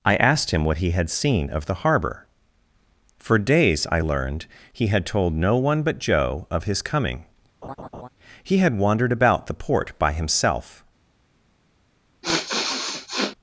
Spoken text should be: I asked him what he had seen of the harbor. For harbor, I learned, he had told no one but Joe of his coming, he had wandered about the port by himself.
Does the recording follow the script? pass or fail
fail